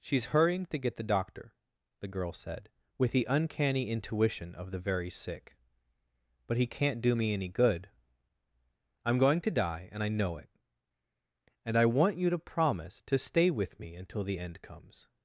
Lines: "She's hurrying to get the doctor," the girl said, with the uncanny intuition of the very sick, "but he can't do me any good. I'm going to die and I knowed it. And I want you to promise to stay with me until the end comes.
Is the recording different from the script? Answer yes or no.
yes